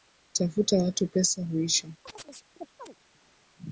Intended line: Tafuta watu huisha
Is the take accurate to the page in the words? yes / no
no